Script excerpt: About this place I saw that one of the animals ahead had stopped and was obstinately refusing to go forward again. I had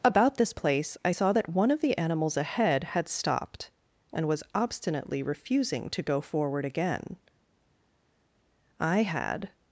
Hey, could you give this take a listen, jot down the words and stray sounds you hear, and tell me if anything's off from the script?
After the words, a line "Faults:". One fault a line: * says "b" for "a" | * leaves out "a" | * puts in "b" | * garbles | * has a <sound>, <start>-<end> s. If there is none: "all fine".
About this place I saw that one of the animals ahead had stopped and was obstinately refusing to go forward again. I had
Faults:
all fine